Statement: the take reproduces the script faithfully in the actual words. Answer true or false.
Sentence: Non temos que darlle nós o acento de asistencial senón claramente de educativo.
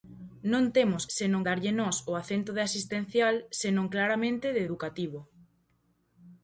false